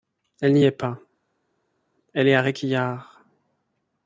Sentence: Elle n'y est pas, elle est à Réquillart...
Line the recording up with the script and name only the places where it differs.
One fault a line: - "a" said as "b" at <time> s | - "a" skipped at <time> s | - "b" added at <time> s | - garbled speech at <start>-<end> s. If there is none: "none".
none